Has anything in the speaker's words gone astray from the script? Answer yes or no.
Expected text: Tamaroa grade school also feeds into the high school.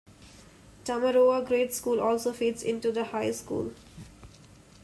no